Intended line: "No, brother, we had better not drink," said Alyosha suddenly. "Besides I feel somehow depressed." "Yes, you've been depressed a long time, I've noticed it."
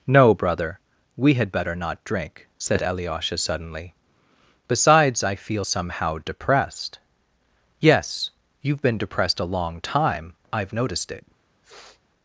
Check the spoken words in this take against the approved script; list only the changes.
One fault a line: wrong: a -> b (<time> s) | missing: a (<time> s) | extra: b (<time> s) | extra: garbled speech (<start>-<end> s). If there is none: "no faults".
no faults